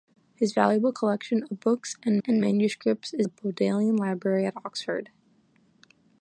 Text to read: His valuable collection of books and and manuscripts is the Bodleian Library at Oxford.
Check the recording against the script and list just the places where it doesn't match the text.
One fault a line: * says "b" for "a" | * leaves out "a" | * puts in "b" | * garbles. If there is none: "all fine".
all fine